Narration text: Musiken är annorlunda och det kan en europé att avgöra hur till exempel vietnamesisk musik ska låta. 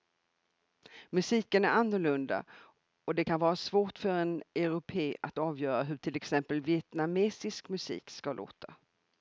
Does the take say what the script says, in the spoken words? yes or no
no